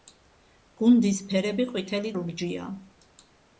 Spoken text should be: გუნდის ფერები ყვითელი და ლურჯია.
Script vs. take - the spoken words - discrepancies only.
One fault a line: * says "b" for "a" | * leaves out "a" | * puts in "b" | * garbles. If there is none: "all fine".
* leaves out "და"